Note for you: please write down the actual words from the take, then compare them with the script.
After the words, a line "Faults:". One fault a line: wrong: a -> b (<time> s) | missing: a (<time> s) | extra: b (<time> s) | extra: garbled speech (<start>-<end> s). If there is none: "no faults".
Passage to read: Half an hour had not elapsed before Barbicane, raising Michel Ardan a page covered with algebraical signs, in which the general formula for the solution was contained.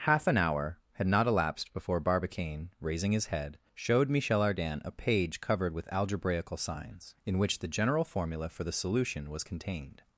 Half an hour had not elapsed before Barbicane, raising his head, showed Michel Ardan a page covered with algebraical signs, in which the general formula for the solution was contained.
Faults:
extra: his head showed (3.1 s)